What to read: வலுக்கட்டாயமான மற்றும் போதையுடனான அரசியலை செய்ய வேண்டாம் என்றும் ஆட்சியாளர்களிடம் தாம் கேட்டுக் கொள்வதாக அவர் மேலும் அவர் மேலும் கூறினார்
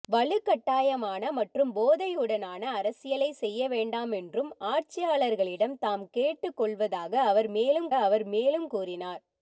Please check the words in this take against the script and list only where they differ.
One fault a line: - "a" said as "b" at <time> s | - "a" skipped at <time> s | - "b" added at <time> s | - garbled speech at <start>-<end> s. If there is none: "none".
none